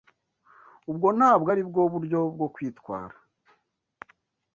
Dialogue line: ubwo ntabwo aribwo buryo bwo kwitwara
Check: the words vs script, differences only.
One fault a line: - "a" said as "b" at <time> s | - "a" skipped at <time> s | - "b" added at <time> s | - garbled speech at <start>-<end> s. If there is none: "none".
none